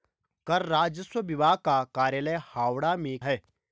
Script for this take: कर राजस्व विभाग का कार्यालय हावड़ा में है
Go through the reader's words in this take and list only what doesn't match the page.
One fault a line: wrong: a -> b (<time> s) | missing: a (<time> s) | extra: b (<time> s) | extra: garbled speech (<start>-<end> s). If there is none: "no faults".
no faults